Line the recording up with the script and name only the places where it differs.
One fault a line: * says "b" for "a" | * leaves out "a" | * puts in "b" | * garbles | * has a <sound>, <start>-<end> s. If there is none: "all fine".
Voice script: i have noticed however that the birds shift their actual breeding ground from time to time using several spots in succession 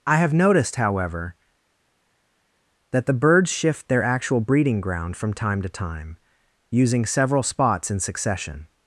all fine